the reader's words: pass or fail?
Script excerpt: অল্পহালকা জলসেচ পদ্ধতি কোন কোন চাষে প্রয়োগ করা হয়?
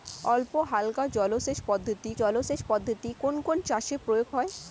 fail